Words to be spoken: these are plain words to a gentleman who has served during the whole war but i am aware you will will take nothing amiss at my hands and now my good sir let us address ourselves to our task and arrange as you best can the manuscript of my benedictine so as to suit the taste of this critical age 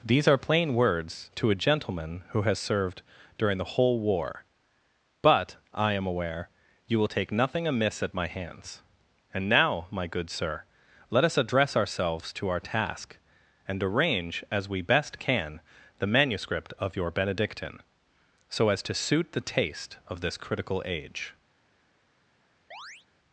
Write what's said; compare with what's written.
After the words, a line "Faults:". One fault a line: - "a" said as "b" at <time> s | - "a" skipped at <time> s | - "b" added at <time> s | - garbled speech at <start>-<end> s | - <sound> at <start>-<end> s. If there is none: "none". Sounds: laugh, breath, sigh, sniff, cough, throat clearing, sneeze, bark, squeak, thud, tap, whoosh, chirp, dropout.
these are plain words to a gentleman who has served during the whole war but i am aware you will take nothing amiss at my hands and now my good sir let us address ourselves to our task and arrange as we best can the manuscript of your benedictine so as to suit the taste of this critical age
Faults:
- "will" skipped at 7.1 s
- "you" said as "we" at 14.7 s
- "my" said as "your" at 16.9 s
- chirp at 22.7-23.1 s